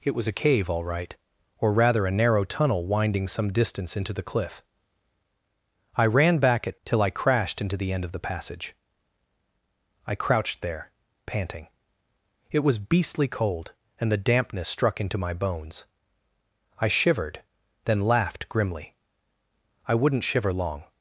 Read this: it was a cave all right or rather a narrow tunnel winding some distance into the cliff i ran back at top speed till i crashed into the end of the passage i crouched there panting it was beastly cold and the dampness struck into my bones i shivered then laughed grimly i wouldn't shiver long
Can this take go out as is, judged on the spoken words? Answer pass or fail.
fail